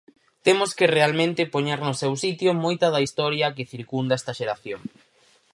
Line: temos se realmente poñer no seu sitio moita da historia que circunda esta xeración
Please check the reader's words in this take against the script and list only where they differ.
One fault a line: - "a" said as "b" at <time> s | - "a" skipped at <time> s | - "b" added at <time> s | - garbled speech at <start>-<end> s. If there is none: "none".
- "se" said as "que" at 0.8 s